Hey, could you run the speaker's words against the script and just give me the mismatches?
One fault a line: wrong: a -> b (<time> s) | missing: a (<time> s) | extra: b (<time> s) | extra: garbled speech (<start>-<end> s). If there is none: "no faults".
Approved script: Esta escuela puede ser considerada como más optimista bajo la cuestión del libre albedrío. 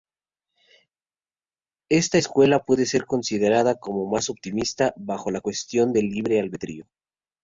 no faults